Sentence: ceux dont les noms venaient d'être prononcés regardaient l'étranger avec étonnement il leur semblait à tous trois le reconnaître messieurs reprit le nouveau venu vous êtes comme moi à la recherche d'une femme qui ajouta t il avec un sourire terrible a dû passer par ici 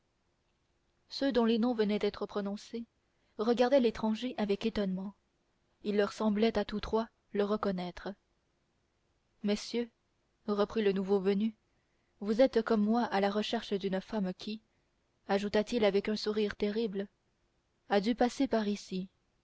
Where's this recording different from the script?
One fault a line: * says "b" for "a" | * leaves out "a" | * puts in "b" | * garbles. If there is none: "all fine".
all fine